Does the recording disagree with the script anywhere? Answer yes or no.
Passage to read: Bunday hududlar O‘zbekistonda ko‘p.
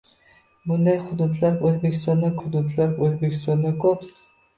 yes